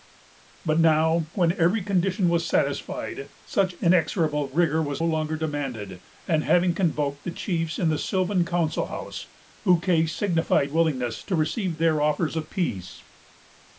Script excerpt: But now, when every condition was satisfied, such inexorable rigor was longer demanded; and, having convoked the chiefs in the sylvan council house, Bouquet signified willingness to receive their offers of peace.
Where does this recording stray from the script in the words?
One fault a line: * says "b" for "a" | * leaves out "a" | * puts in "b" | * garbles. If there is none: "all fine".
all fine